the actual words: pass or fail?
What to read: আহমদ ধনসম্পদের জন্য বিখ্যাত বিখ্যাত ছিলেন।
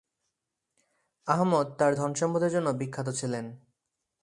fail